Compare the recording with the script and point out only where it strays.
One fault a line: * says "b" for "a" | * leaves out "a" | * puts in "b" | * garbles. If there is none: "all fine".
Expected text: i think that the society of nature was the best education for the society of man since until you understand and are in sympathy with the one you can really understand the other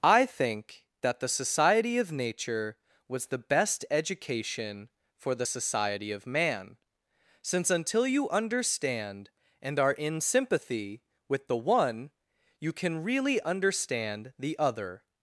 all fine